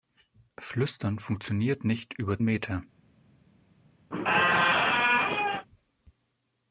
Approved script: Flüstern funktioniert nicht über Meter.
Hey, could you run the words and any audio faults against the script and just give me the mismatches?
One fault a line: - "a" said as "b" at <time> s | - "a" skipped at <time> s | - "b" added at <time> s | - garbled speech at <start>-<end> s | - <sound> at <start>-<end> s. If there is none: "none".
- squeak at 4.1-5.7 s